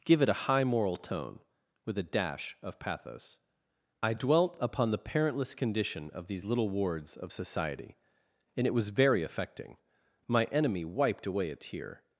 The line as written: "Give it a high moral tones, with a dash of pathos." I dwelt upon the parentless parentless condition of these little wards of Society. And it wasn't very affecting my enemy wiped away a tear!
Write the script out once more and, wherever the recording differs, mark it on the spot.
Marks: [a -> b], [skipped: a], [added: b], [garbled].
"Give it a high moral [tones, -> tone] with a dash of pathos." I dwelt upon the parentless [skipped: parentless] condition of these little wards of Society. And it [wasn't -> was] very affecting my enemy wiped away a tear!